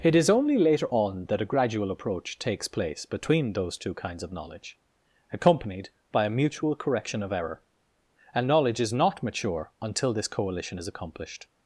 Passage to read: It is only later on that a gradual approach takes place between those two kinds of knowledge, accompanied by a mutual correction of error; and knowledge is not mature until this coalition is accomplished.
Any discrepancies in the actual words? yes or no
no